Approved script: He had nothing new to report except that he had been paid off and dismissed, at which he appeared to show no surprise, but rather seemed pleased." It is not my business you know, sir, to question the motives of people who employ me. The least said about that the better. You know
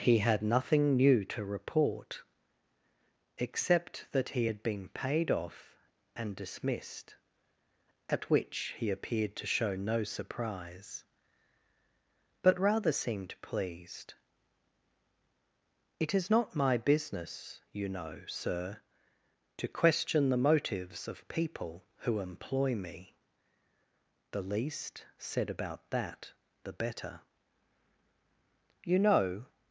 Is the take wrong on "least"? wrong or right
right